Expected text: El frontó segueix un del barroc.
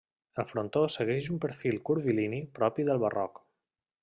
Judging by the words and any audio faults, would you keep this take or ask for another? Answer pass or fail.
fail